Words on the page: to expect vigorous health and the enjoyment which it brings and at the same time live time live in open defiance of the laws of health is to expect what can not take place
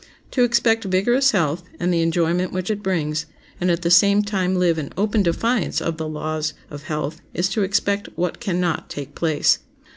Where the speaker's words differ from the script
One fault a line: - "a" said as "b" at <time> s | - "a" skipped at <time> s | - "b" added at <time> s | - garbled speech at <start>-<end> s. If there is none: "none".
- "time live" skipped at 4.8 s